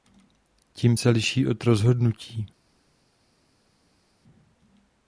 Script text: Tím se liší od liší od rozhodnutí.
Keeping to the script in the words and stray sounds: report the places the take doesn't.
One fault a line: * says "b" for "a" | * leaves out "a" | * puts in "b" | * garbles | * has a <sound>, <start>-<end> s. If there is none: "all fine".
* leaves out "liší od"